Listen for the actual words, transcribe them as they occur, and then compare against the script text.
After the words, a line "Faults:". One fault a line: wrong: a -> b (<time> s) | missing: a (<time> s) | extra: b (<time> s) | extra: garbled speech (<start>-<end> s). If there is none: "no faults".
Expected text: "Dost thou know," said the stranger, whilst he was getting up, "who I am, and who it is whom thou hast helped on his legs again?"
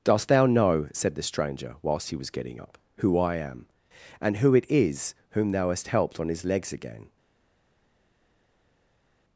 "Dost thou know," said the stranger, whilst he was getting up, "who I am, and who it is whom thou hast helped on his legs again?"
Faults:
no faults